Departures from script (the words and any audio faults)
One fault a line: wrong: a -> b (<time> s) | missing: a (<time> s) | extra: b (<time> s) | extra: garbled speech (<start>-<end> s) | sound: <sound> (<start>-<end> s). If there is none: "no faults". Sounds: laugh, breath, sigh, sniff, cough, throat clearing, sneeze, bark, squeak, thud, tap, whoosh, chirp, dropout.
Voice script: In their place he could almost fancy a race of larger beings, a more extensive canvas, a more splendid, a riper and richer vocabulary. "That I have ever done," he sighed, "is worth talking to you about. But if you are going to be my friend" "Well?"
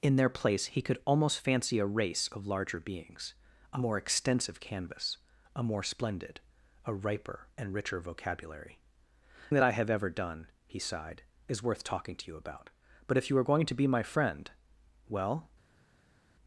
no faults